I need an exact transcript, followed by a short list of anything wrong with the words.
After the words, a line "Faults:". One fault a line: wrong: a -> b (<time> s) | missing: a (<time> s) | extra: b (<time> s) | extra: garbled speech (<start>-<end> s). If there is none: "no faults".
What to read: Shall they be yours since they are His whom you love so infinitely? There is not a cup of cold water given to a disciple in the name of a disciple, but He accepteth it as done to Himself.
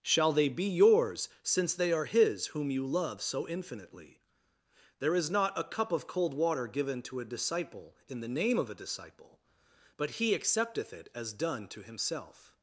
Shall they be yours since they are His whom you love so infinitely? There is not a cup of cold water given to a disciple in the name of a disciple, but He accepteth it as done to Himself.
Faults:
no faults